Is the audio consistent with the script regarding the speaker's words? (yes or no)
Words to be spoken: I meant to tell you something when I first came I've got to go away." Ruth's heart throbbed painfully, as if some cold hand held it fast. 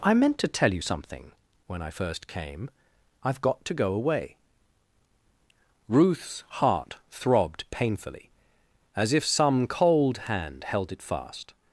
yes